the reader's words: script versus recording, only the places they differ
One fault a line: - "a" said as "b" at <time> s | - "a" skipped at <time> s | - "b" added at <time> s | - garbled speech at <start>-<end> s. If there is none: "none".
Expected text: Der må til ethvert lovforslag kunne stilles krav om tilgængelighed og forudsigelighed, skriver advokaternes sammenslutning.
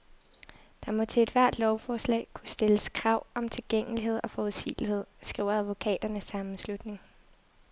none